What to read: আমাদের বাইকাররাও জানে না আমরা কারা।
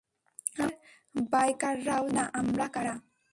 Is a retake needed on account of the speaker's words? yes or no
yes